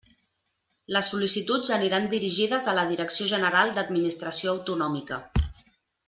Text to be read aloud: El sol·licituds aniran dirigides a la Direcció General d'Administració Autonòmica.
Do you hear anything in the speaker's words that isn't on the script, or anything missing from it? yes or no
yes